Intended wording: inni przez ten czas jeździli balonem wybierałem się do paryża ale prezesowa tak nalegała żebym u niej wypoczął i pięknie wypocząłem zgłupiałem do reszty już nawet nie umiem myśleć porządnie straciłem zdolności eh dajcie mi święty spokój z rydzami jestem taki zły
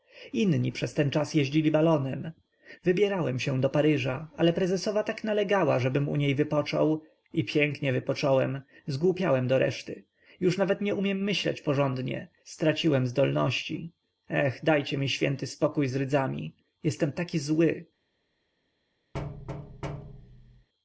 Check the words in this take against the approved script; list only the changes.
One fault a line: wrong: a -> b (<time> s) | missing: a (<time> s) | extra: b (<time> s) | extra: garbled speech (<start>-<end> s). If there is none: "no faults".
no faults